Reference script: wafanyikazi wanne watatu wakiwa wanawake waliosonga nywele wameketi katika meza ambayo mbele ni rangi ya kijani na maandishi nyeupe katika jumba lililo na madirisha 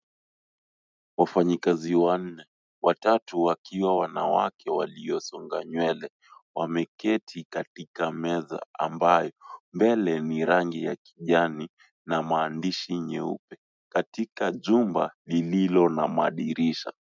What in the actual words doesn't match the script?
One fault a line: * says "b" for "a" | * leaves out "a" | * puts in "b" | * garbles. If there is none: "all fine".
all fine